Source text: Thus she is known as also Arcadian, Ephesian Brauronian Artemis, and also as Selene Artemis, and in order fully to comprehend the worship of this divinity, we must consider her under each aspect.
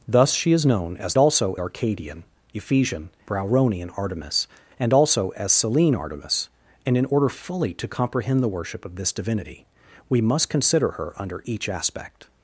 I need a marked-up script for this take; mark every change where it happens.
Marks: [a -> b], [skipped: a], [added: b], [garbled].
Thus she is known as also Arcadian, Ephesian Brauronian Artemis, and also as Selene Artemis, and in order fully to comprehend the worship of this divinity, we must consider her under each aspect.